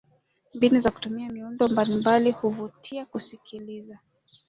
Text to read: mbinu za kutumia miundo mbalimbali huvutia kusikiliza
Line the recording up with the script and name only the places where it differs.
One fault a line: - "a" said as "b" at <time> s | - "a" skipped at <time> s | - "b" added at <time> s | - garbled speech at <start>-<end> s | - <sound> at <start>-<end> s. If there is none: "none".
none